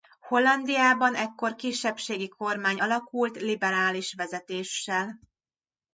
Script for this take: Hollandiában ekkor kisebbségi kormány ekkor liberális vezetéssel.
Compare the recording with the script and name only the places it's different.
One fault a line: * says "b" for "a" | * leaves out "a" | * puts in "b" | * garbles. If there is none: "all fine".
* says "alakult" for "ekkor"